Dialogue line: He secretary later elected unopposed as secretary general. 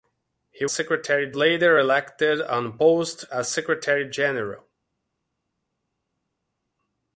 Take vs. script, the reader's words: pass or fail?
pass